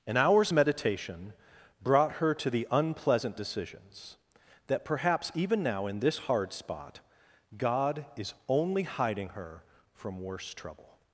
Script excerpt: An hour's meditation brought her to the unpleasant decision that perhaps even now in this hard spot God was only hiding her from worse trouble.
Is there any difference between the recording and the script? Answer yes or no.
yes